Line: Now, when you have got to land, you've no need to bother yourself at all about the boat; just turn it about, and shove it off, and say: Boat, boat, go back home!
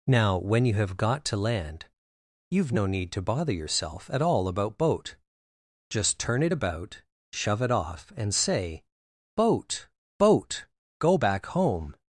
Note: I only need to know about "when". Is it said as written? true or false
true